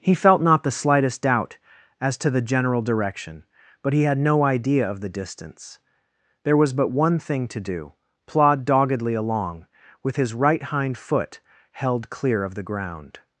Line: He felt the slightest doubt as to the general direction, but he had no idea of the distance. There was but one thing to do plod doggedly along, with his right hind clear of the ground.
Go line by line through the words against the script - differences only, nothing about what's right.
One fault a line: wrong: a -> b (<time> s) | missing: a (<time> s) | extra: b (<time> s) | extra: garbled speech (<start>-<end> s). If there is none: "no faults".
extra: not (0.4 s)
extra: foot held (11.0 s)